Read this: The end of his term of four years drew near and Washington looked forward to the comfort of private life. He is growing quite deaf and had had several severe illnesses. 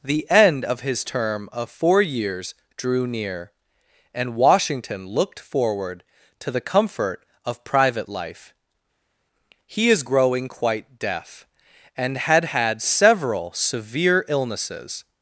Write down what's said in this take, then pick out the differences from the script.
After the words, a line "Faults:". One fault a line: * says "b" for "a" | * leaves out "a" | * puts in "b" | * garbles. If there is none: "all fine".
The end of his term of four years drew near and Washington looked forward to the comfort of private life. He is growing quite deaf and had had several severe illnesses.
Faults:
all fine